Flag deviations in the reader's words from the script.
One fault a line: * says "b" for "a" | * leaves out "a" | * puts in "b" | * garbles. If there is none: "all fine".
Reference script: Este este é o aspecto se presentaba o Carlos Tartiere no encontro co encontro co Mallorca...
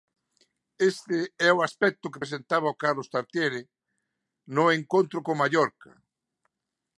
* leaves out "este"
* says "que" for "se"
* leaves out "encontro co"